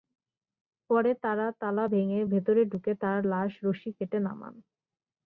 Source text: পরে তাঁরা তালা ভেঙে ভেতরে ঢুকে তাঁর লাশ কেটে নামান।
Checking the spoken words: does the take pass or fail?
fail